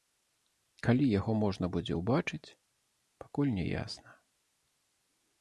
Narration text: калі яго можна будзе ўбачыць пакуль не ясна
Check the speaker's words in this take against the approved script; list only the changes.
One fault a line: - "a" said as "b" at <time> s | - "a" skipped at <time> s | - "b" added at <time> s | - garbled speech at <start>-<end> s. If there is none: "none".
none